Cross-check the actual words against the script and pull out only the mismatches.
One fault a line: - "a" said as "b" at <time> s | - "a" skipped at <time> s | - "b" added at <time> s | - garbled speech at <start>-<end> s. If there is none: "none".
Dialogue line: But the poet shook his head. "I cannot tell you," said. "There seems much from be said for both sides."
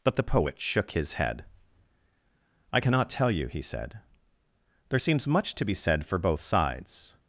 - "he" added at 3.5 s
- "from" said as "to" at 5.5 s